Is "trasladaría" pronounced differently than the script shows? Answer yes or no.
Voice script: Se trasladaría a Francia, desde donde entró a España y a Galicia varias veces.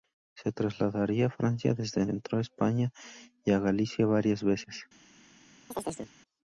no